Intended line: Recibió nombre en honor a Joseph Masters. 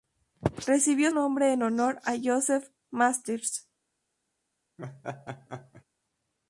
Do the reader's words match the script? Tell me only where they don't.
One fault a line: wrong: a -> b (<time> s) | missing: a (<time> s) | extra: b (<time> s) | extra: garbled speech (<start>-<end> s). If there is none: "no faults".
no faults